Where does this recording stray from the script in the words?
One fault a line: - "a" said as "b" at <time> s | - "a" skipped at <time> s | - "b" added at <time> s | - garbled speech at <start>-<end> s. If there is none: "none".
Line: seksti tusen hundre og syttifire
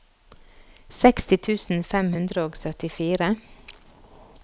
- "fem" added at 1.9 s